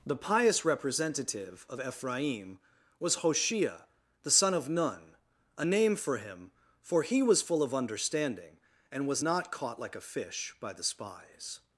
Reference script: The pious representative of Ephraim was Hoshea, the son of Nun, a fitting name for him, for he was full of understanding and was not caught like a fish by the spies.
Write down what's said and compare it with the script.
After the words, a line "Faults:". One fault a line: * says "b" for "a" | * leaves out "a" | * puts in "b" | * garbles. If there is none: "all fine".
The pious representative of Ephraim was Hoshea, the son of Nun, a name for him, for he was full of understanding and was not caught like a fish by the spies.
Faults:
* leaves out "fitting"